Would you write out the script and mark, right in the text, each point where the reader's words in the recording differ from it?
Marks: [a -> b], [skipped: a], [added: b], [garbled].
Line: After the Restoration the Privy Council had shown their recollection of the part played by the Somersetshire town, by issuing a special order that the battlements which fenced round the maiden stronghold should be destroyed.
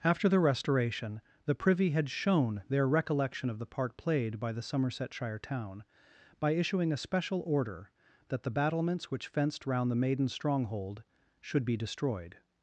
After the Restoration the Privy [skipped: Council] had shown their recollection of the part played by the Somersetshire town, by issuing a special order that the battlements which fenced round the maiden stronghold should be destroyed.